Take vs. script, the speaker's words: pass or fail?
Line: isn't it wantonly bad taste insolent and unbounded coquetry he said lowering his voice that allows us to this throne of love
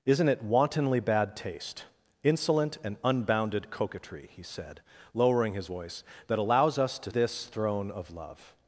pass